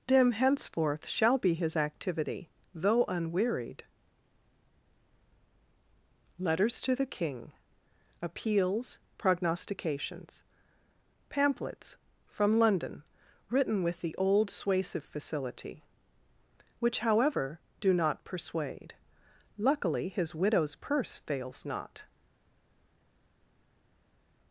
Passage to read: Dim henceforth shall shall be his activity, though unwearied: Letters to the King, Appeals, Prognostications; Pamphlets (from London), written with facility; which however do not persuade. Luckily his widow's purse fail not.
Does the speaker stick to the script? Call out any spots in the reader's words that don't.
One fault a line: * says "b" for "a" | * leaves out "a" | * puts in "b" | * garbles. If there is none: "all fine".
* leaves out "shall"
* puts in "the old suasive"
* says "fails" for "fail"